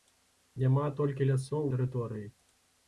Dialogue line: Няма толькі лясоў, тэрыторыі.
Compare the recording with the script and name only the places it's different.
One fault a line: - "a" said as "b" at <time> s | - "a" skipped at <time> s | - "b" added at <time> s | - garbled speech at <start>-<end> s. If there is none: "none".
none